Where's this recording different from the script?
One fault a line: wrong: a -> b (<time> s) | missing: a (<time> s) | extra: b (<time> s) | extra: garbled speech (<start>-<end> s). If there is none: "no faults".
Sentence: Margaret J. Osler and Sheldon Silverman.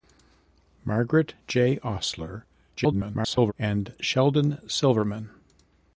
extra: garbled speech (2.8-3.5 s)